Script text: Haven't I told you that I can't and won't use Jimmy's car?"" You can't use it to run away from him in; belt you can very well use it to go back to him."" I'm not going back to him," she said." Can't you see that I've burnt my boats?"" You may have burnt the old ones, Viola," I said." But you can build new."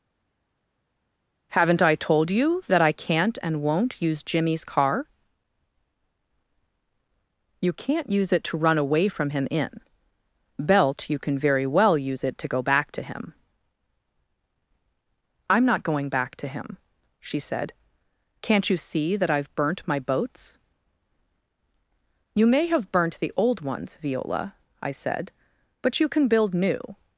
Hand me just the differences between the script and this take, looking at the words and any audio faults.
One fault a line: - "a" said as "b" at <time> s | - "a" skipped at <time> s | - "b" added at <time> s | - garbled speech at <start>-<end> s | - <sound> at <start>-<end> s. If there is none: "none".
none